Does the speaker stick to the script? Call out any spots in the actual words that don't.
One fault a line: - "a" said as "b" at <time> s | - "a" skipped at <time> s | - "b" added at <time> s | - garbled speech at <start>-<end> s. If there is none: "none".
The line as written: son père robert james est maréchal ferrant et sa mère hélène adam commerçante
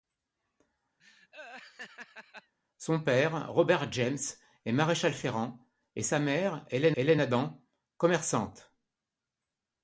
- "hélène" added at 6.9 s